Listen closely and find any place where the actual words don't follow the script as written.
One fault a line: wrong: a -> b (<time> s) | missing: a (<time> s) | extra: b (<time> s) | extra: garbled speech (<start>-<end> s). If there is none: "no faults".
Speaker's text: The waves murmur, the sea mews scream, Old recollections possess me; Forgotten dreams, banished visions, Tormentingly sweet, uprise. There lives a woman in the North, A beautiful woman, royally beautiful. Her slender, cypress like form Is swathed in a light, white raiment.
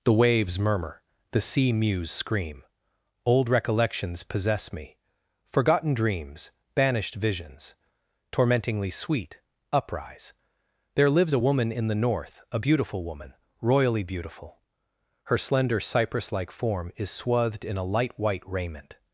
no faults